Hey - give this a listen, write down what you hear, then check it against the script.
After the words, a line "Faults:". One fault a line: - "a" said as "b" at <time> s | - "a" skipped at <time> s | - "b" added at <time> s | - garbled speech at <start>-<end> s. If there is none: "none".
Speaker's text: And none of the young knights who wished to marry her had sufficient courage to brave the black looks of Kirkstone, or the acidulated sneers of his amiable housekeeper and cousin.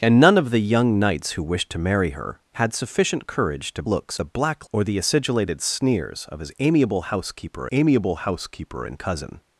And none of the young knights who wished to marry her had sufficient courage to looks the black or the acidulated sneers of his amiable housekeeper amiable housekeeper and cousin.
Faults:
- "brave" said as "looks" at 3.8 s
- "looks of Kirkstone" skipped at 4.7 s
- "amiable housekeeper" added at 7.7 s